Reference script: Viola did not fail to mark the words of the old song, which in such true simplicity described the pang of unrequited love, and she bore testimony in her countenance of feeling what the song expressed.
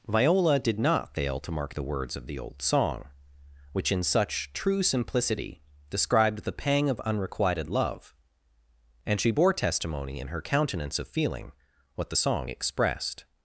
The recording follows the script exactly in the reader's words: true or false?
true